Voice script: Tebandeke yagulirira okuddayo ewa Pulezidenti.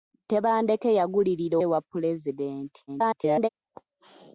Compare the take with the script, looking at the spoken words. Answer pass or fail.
fail